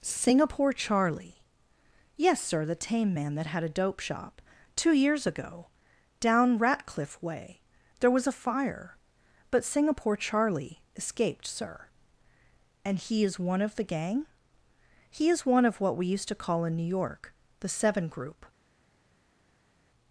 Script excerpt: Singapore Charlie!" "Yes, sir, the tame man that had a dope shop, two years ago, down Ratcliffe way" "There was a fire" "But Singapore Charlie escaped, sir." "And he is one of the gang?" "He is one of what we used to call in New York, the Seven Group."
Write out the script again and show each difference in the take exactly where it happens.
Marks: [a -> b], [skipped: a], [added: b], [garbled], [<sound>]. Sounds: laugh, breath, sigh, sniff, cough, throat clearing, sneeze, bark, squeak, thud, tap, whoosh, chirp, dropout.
Singapore Charlie!" "Yes, sir, the tame man that had a dope shop, two years ago, down Ratcliffe way" "There was a fire" "But Singapore Charlie escaped, sir." "And he is one of the gang?" "He is one of what we used to call in New York, the Seven Group."